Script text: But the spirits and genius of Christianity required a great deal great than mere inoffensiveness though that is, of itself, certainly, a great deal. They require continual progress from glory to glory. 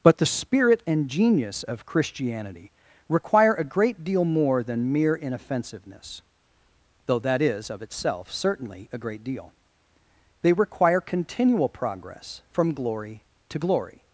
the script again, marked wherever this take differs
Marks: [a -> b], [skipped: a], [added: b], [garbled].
But the [spirits -> spirit] and genius of Christianity [required -> require] a great deal [great -> more] than mere inoffensiveness though that is, of itself, certainly, a great deal. They require continual progress from glory to glory.